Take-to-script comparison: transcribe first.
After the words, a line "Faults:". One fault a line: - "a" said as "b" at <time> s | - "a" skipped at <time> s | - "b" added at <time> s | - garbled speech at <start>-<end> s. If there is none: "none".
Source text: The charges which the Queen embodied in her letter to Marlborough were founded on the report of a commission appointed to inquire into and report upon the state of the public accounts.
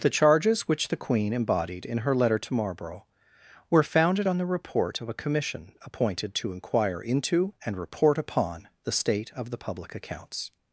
The charges which the Queen embodied in her letter to Marlborough were founded on the report of a commission appointed to inquire into and report upon the state of the public accounts.
Faults:
none